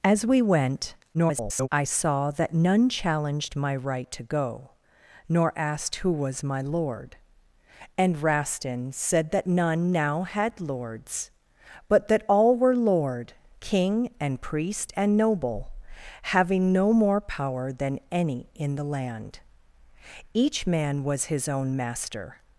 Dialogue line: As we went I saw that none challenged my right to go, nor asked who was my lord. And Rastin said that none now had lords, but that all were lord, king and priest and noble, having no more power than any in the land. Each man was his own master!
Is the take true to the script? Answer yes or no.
no